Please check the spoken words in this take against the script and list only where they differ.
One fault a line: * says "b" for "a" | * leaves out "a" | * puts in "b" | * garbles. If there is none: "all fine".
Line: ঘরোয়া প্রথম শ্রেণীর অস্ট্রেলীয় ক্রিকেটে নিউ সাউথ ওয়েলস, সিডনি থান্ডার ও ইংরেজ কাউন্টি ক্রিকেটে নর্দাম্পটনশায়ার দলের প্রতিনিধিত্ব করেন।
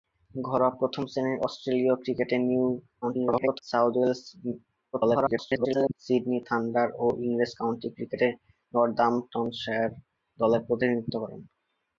* garbles
* garbles